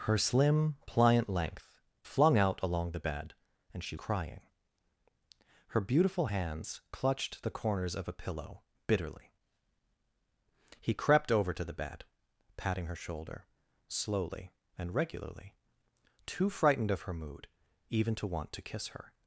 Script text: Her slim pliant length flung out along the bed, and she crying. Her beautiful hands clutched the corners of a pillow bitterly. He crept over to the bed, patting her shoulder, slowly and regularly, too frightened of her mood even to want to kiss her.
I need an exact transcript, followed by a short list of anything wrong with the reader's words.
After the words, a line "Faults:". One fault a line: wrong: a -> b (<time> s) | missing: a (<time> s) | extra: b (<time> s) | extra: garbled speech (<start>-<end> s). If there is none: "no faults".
Her slim pliant length flung out along the bed, and she crying. Her beautiful hands clutched the corners of a pillow bitterly. He crept over to the bed, patting her shoulder, slowly and regularly, too frightened of her mood even to want to kiss her.
Faults:
no faults